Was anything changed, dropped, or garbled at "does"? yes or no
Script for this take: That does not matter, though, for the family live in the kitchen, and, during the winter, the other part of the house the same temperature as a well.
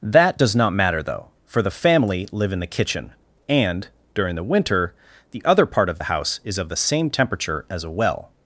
no